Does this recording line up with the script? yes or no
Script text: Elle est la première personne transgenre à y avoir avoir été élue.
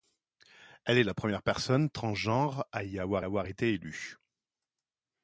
yes